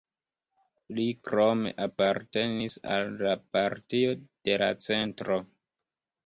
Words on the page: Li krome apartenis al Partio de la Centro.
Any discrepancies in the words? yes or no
yes